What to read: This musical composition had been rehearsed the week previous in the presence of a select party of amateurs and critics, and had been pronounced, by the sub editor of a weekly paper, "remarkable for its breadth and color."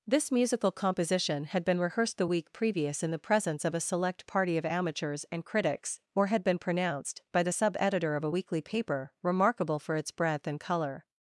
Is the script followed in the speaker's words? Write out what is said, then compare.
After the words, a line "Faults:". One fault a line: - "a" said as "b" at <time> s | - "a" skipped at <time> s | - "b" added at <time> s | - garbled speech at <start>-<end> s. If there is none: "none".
This musical composition had been rehearsed the week previous in the presence of a select party of amateurs and critics, or had been pronounced, by the sub editor of a weekly paper, "remarkable for its breadth and color."
Faults:
- "and" said as "or" at 6.1 s